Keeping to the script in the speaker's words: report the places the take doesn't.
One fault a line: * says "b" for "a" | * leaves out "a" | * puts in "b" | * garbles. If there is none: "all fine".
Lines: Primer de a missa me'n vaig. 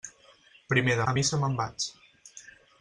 all fine